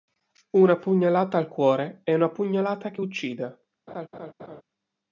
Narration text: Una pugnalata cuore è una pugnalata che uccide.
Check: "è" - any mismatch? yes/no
no